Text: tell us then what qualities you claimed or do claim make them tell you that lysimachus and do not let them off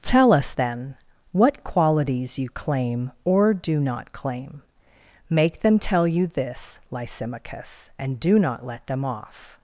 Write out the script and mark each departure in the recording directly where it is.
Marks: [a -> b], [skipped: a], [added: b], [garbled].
tell us then what qualities you [claimed -> claim] or do [added: not] claim make them tell you [that -> this] lysimachus and do not let them off